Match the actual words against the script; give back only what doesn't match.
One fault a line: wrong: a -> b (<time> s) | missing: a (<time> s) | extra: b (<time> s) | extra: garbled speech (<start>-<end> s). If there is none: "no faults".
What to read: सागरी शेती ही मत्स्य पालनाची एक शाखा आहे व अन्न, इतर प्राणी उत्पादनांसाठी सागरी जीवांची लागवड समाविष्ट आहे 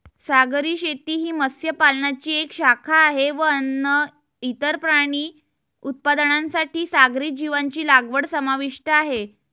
no faults